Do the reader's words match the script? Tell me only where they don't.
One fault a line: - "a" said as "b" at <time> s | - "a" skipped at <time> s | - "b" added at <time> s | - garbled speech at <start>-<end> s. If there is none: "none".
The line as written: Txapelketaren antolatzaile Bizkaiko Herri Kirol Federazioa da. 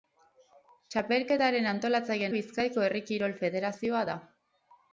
none